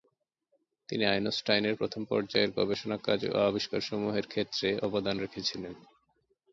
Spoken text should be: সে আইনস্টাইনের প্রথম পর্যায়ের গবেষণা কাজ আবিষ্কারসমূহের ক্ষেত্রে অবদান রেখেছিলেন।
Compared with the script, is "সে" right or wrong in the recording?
wrong